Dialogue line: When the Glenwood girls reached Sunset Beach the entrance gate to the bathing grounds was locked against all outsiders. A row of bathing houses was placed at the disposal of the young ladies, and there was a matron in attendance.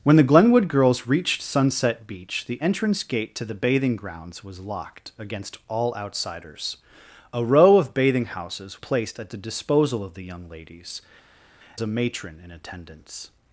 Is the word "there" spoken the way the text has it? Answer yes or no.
no